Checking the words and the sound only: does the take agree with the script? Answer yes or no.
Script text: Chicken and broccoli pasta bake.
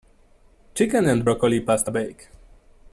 yes